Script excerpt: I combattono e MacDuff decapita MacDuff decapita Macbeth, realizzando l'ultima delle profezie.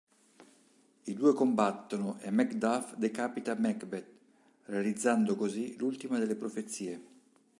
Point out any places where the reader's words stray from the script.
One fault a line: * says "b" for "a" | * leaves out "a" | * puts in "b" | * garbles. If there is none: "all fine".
* puts in "due"
* leaves out "MacDuff decapita"
* puts in "così"